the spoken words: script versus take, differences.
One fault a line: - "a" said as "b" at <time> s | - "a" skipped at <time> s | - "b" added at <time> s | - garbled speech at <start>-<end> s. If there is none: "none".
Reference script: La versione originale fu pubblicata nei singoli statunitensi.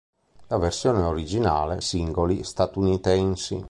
- "fu pubblicata nei" skipped at 1.8 s